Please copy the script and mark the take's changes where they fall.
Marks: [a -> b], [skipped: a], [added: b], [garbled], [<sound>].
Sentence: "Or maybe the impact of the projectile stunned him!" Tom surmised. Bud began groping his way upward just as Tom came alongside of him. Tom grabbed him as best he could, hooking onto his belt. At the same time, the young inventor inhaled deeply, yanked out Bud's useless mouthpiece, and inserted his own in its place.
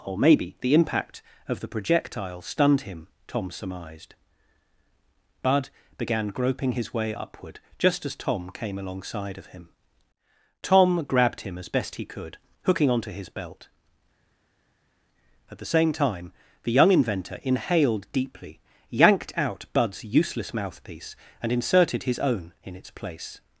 "Or maybe the impact of the projectile stunned him!" Tom surmised. Bud began groping his way upward just as Tom came alongside of him. Tom grabbed him as best he could, hooking onto his belt. At the same time, the young inventor inhaled deeply, yanked out Bud's useless mouthpiece, and inserted his own in its place.